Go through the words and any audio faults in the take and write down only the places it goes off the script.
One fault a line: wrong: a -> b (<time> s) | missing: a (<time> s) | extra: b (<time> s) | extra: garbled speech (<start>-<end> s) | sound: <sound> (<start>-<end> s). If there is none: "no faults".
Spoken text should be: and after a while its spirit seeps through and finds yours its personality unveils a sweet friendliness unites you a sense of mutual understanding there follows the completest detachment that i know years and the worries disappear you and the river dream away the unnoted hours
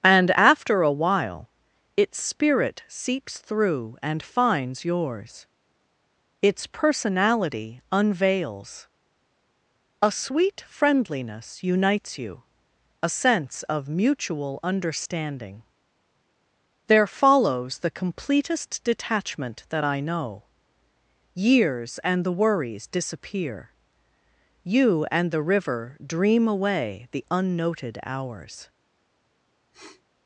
sound: sniff (29.7-30.0 s)